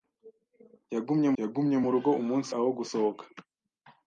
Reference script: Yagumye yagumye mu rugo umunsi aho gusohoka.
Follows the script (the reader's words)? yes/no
yes